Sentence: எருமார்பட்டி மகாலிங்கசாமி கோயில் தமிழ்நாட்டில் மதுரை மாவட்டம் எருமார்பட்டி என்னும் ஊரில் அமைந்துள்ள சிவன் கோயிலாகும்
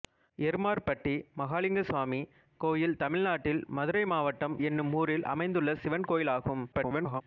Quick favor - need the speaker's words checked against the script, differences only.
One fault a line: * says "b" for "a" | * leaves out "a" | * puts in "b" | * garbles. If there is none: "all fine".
* leaves out "எருமார்பட்டி"
* garbles